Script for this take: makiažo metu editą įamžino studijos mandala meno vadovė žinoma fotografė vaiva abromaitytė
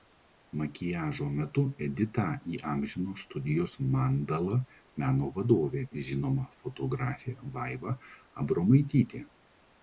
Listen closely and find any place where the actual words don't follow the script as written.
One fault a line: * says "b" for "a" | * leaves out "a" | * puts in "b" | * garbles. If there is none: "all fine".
all fine